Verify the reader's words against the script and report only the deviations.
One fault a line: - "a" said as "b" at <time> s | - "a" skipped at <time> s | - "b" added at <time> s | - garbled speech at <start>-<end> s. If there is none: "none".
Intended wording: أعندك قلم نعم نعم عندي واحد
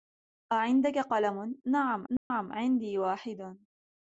none